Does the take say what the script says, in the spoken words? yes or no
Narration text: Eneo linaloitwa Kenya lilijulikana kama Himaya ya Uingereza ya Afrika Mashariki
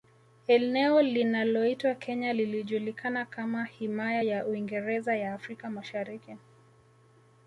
yes